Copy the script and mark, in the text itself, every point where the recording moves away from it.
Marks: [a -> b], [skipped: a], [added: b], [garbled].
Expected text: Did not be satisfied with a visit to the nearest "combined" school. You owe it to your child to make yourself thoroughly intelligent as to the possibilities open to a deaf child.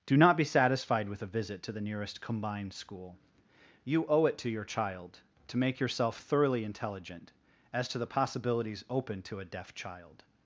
[Did -> Do] not be satisfied with a visit to the nearest "combined" school. You owe it to your child to make yourself thoroughly intelligent as to the possibilities open to a deaf child.